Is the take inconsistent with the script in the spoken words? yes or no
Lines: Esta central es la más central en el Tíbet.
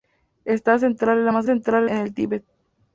no